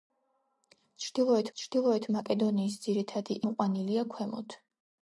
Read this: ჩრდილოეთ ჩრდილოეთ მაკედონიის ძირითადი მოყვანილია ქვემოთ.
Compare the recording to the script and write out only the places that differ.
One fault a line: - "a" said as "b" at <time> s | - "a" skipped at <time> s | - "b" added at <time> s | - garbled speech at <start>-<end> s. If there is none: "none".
none